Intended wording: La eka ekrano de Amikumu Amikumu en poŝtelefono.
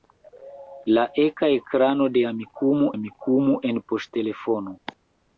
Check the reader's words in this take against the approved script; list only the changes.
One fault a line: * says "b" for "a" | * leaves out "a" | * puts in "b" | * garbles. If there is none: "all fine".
all fine